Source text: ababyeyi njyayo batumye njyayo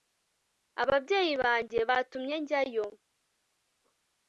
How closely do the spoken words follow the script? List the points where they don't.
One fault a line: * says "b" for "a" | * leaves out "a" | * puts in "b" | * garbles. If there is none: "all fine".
* says "banjye" for "njyayo"